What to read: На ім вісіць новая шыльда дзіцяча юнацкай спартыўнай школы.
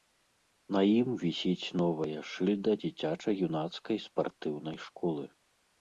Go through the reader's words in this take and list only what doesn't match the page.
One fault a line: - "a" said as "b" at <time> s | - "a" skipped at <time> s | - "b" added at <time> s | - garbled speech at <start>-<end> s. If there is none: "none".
none